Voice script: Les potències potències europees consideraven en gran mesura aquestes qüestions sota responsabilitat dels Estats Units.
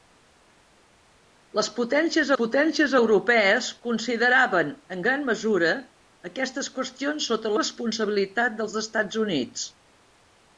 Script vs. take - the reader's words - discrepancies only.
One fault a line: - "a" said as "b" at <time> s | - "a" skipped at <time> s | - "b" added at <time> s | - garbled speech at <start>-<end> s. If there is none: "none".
none